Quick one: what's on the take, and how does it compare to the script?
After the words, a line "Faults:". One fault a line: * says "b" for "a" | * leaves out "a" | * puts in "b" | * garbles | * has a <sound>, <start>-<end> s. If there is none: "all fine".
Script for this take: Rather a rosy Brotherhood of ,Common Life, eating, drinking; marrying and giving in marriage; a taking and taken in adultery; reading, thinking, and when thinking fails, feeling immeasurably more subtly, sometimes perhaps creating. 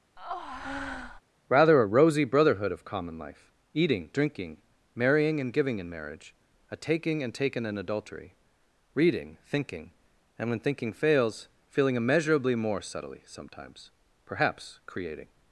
Rather a rosy Brotherhood of ,Common Life, eating, drinking; marrying and giving in marriage; a taking and taken in adultery; reading, thinking, and when thinking fails, feeling immeasurably more subtly, sometimes perhaps creating.
Faults:
* has a breath, 0.2-1.2 s